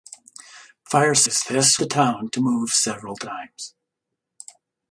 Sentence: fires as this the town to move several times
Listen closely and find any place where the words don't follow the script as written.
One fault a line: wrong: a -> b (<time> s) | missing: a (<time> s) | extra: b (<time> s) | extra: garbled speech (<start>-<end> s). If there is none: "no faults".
no faults